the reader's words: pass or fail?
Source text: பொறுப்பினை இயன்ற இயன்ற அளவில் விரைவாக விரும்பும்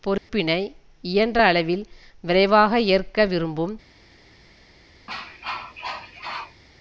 fail